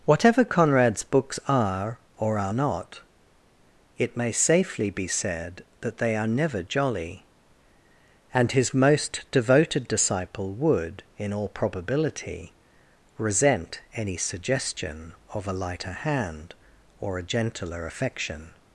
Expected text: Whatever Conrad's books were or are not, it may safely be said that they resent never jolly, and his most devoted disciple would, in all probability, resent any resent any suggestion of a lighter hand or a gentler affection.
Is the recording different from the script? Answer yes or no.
yes